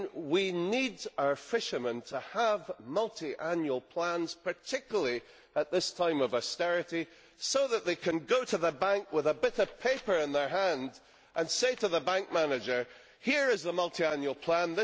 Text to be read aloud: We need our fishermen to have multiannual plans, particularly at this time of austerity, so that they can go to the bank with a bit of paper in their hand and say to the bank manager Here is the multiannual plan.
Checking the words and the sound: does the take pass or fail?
pass